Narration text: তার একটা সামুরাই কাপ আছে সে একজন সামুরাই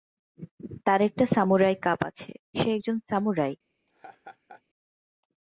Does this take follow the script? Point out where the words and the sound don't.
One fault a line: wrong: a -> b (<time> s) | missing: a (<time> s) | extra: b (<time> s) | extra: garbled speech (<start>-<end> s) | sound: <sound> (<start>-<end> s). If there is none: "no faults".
sound: laugh (3.9-4.6 s)